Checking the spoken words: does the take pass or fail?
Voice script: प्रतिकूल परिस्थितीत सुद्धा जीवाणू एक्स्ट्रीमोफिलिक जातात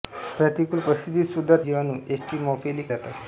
pass